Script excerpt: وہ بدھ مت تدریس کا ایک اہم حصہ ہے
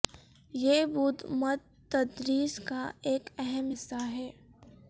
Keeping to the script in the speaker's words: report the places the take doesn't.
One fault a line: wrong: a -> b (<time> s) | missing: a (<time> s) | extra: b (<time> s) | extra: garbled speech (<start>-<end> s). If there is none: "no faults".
wrong: وہ -> یہ (0.5 s)